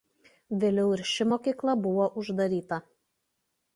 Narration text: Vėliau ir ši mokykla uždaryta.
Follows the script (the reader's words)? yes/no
no